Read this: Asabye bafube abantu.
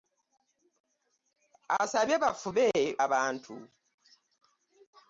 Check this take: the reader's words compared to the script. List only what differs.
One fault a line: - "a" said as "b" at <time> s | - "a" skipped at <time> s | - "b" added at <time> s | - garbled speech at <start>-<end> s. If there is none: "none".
none